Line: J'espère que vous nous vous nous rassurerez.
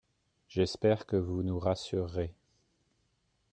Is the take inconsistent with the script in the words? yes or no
yes